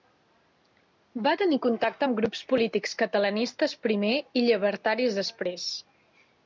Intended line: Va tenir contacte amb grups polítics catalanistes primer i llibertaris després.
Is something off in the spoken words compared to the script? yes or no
no